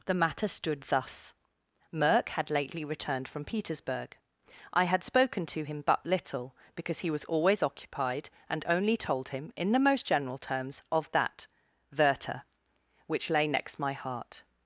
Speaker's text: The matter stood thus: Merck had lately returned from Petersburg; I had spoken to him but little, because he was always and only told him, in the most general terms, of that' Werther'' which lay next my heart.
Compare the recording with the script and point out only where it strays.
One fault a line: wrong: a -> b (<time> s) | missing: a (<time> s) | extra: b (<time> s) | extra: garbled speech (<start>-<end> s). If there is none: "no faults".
extra: occupied (7.6 s)